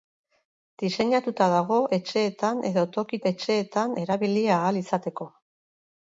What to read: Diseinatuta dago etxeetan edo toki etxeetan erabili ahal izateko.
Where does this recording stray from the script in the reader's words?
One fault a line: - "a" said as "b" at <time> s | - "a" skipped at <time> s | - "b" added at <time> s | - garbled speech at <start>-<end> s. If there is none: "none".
none